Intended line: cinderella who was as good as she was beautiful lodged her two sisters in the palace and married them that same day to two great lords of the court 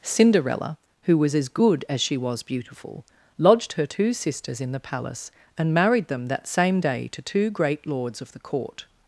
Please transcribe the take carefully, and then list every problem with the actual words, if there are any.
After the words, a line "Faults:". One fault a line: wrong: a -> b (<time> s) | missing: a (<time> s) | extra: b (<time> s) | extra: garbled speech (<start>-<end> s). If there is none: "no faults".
cinderella who was as good as she was beautiful lodged her two sisters in the palace and married them that same day to two great lords of the court
Faults:
no faults